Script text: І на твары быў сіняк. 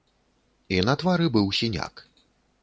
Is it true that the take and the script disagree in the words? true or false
false